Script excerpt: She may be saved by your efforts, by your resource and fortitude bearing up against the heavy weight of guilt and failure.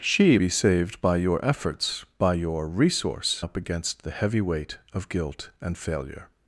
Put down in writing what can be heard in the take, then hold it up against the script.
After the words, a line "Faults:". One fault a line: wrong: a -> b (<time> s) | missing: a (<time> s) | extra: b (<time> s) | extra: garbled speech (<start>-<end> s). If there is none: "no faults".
She be saved by your efforts, by your resource up against the heavy weight of guilt and failure.
Faults:
missing: may (0.4 s)
missing: and fortitude bearing (3.4 s)